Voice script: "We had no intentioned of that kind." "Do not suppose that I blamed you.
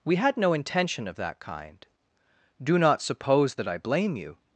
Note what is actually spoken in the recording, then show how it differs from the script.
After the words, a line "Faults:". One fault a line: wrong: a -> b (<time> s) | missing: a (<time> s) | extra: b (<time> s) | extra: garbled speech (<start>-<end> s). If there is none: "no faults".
"We had no intention of that kind." "Do not suppose that I blame you.
Faults:
wrong: intentioned -> intention (0.5 s)
wrong: blamed -> blame (3.8 s)